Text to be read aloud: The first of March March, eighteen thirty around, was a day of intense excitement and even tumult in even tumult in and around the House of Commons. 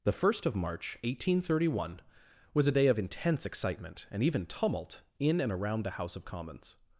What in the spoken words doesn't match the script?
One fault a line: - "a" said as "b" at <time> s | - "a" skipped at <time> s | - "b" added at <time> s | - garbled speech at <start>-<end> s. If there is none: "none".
- "March" skipped at 1.0 s
- "around" said as "one" at 1.8 s
- "even tumult in" skipped at 5.4 s